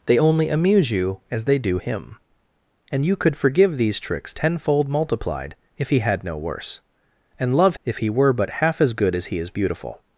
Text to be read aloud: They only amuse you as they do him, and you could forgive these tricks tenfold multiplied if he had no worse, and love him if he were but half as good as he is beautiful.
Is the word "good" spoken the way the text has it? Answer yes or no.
yes